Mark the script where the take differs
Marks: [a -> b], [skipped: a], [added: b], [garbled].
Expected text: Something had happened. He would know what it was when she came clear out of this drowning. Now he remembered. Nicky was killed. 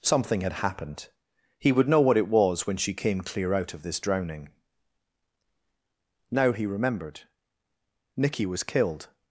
Something had happened. He would know what it was when she came clear out of this drowning. Now he remembered. Nicky was killed.